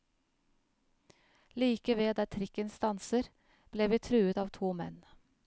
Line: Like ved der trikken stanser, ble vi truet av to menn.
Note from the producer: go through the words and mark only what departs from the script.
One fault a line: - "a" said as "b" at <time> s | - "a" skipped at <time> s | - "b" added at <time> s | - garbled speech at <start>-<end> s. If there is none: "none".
none